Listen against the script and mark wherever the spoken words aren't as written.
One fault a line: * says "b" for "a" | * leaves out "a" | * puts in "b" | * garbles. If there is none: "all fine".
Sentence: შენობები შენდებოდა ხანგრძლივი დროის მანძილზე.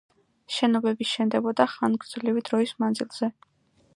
all fine